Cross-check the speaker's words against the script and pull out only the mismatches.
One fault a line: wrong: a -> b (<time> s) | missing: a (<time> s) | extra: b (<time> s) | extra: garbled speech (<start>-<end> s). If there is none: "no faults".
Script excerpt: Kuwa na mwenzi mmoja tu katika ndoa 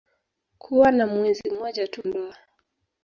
missing: katika (2.0 s)